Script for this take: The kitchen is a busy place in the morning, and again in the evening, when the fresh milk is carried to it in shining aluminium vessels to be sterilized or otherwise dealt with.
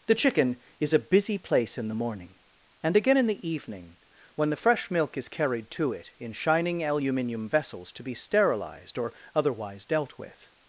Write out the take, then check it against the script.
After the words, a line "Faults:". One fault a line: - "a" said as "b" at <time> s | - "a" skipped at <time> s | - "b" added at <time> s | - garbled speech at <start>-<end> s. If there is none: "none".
The chicken is a busy place in the morning, and again in the evening, when the fresh milk is carried to it in shining aluminium vessels to be sterilized or otherwise dealt with.
Faults:
- "kitchen" said as "chicken" at 0.1 s